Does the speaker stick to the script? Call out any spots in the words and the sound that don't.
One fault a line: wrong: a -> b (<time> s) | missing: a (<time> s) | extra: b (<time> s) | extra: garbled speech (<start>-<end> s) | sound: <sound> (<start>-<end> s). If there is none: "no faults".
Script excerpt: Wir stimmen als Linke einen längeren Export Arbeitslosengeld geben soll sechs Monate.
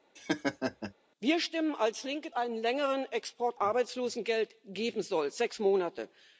sound: laugh (0.2-0.9 s)